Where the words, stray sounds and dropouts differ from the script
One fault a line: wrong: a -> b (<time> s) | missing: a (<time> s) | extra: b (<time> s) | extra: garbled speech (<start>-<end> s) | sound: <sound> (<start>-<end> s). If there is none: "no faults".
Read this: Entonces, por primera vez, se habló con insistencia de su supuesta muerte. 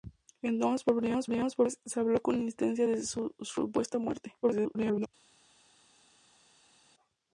extra: primera (1.2 s)
extra: garbled speech (4.4-5.1 s)